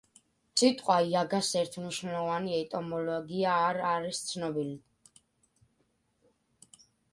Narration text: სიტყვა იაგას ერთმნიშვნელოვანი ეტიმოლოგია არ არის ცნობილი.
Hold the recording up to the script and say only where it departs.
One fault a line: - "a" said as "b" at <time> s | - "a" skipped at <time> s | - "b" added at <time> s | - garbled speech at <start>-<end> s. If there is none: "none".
none